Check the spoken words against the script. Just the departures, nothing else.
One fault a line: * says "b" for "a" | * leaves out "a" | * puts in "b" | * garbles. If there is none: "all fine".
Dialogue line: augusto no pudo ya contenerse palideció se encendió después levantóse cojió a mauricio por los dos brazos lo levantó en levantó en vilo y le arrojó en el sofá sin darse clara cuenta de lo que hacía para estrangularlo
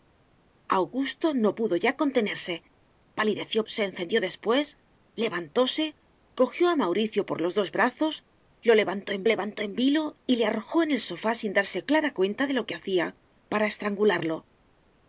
all fine